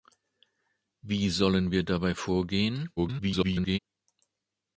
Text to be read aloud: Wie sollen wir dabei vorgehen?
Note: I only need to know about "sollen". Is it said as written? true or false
true